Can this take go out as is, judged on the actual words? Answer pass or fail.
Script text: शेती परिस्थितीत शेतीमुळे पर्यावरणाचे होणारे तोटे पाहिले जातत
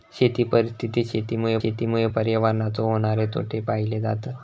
fail